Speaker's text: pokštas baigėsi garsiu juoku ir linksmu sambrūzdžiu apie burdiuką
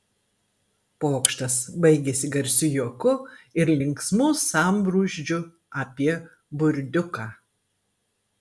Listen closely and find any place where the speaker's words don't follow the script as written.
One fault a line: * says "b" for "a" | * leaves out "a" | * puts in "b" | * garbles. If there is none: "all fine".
all fine